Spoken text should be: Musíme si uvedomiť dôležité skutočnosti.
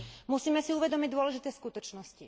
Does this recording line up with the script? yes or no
yes